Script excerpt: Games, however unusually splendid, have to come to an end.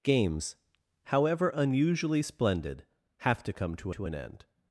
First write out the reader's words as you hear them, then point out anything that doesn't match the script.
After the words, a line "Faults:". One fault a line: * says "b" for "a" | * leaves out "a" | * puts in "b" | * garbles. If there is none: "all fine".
Games, however unusually splendid, have to come to to an end.
Faults:
* puts in "to"